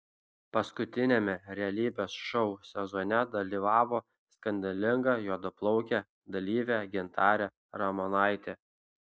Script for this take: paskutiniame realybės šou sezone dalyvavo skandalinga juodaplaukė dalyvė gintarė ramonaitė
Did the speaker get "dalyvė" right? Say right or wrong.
right